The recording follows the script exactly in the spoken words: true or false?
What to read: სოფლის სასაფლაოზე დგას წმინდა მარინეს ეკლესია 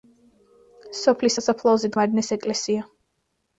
false